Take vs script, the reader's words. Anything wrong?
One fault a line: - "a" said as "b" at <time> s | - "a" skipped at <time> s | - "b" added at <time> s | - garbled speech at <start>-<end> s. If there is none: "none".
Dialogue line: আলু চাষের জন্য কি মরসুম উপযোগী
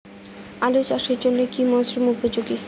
none